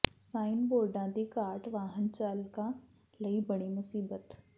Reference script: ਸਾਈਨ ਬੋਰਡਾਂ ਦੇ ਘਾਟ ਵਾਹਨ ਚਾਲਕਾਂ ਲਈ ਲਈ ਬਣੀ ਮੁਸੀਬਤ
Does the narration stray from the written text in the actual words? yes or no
yes